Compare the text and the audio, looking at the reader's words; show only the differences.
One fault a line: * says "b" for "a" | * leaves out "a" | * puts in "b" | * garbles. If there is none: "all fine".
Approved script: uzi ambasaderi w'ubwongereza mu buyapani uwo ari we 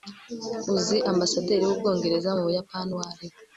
all fine